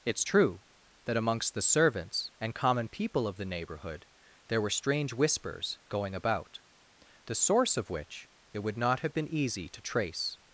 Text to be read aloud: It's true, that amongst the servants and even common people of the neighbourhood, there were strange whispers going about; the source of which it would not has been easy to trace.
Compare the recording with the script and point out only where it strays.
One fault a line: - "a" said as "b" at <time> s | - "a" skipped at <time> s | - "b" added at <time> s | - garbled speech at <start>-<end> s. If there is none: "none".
- "even" skipped at 2.5 s
- "has" said as "have" at 9.0 s